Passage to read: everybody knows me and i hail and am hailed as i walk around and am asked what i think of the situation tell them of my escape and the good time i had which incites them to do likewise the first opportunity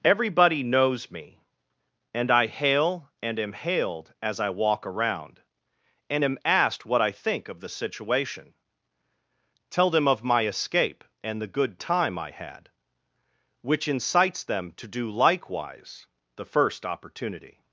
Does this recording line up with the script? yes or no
yes